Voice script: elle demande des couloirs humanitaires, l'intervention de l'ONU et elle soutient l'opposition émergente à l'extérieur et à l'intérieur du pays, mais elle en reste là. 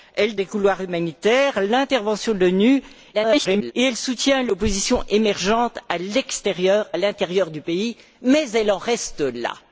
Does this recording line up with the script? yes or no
no